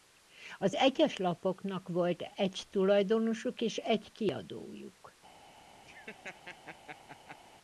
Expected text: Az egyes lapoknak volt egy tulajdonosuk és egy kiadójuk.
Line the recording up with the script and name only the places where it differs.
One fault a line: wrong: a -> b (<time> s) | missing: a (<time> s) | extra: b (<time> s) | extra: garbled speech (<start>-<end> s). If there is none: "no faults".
no faults